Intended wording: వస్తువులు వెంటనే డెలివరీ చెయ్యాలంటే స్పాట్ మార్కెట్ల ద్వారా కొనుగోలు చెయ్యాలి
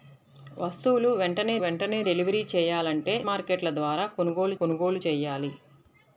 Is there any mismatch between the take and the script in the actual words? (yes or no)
yes